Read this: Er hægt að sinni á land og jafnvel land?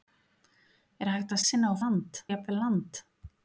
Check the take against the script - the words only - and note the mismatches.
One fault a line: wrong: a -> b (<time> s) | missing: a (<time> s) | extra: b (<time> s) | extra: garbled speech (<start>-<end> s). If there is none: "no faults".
no faults